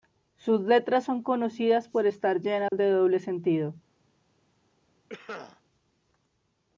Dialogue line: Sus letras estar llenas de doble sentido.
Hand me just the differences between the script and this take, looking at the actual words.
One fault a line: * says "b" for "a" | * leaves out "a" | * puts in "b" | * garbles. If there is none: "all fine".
* puts in "son conocidas por"